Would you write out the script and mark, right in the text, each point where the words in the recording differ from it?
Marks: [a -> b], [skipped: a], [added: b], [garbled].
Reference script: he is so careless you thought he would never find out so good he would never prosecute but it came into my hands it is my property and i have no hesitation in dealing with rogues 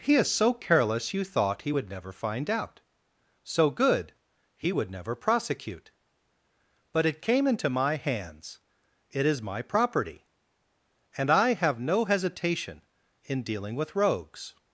he is so careless you thought he would never find out so good he would never prosecute but it came into my hands it is my property and i have no hesitation in dealing with rogues